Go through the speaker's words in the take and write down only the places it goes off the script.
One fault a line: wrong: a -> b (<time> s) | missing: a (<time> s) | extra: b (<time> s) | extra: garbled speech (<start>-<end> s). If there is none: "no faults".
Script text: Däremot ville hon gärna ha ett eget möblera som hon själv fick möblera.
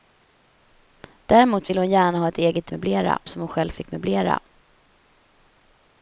no faults